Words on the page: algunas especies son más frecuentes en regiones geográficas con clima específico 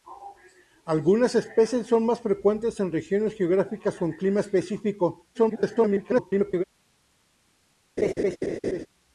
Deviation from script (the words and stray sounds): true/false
true